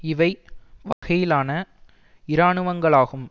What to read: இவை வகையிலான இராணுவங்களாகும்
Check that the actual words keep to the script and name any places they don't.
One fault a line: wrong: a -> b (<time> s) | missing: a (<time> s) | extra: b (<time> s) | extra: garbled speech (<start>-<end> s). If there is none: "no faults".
no faults